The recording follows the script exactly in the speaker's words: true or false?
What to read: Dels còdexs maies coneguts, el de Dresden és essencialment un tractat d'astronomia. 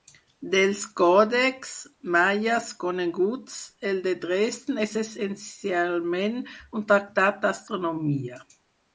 true